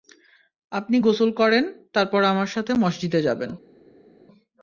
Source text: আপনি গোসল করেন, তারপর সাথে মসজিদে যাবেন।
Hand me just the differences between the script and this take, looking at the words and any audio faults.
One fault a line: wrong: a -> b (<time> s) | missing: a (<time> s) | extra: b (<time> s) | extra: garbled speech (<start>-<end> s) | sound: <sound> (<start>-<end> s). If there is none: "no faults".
extra: আমার (2.2 s)